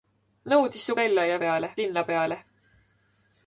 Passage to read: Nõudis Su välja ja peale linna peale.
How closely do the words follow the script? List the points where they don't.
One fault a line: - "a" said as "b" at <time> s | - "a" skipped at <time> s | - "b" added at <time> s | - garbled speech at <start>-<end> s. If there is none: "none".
none